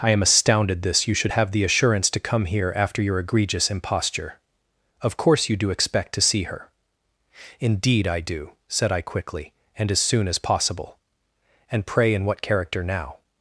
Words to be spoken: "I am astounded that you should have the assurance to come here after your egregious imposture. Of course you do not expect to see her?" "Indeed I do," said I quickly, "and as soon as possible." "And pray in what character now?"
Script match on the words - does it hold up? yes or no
no